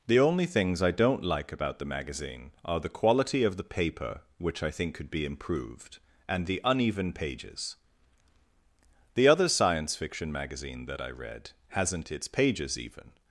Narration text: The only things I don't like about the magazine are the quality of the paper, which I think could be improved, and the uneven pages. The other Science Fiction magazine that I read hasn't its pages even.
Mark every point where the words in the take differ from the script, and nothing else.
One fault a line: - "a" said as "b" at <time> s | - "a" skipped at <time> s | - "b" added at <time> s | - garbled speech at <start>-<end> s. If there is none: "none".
none